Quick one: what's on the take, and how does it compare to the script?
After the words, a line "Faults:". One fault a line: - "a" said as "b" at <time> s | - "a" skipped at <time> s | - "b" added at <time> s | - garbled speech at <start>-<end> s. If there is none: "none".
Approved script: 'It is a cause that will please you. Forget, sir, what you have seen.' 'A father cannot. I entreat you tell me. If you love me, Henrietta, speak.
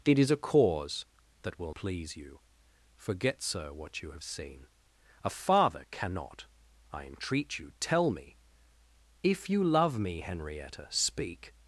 'It is a cause that will please you. Forget, sir, what you have seen.' 'A father cannot. I entreat you tell me. If you love me, Henrietta, speak.
Faults:
none